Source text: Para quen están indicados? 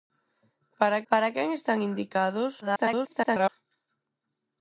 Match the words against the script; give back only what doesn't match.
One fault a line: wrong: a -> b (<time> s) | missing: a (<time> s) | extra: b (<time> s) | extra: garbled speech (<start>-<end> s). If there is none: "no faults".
extra: para (1.1 s)
extra: garbled speech (2.6-3.5 s)